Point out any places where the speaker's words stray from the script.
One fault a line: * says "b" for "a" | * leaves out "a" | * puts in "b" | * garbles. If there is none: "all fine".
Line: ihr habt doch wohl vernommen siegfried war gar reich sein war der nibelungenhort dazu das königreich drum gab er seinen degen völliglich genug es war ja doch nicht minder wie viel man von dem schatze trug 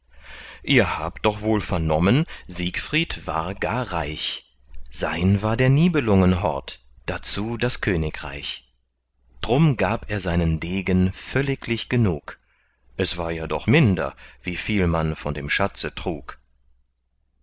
* leaves out "nicht"